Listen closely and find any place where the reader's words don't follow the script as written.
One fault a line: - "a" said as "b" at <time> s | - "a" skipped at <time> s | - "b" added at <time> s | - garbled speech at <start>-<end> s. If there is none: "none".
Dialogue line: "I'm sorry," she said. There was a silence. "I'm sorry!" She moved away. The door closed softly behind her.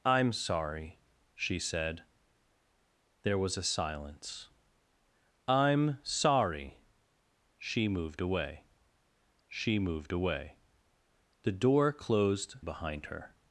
- "she moved away" added at 9.5 s
- "softly" skipped at 12.5 s